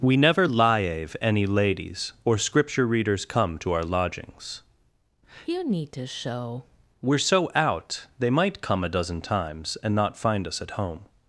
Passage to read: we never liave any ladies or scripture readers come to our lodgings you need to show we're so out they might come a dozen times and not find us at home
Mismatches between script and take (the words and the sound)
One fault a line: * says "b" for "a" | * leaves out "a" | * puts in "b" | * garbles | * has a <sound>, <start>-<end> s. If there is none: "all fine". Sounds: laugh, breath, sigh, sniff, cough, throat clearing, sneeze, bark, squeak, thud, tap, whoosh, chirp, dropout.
all fine